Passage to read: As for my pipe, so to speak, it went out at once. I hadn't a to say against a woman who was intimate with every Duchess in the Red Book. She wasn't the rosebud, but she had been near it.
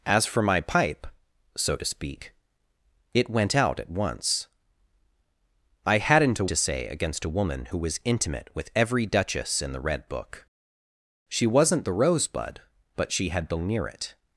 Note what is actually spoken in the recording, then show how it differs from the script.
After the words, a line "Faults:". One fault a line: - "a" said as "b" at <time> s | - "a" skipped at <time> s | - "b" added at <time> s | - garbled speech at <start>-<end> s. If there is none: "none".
As for my pipe, so to speak, it went out at once. I hadn't a to say against a woman who was intimate with every Duchess in the Red Book. She wasn't the rosebud, but she had been near it.
Faults:
none